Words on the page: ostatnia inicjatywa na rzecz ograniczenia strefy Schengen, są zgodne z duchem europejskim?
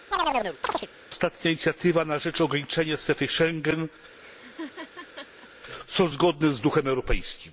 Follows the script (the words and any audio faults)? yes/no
no